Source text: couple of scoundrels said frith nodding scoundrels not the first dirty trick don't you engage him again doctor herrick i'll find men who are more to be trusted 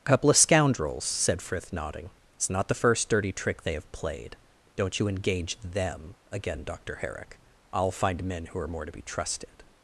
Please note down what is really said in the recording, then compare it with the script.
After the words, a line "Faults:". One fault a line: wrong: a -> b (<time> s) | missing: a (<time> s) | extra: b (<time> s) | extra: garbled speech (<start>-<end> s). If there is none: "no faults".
couple of scoundrels said frith nodding it's not the first dirty trick they have played don't you engage them again doctor herrick i'll find men who are more to be trusted
Faults:
wrong: scoundrels -> it's (2.4 s)
extra: they have played (3.6 s)
wrong: him -> them (5.6 s)